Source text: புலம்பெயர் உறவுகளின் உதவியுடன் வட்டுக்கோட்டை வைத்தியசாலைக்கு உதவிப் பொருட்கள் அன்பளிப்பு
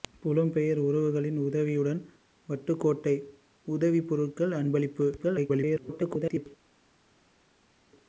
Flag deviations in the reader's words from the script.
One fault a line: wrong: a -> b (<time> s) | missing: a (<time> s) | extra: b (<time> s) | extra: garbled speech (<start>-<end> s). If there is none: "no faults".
missing: வைத்தியசாலைக்கு (3.1 s)
extra: garbled speech (5.2-6.5 s)